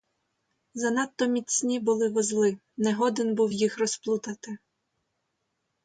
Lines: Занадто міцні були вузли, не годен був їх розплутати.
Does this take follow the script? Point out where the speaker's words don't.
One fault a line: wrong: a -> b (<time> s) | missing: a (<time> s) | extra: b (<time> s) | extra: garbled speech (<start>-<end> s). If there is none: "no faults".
no faults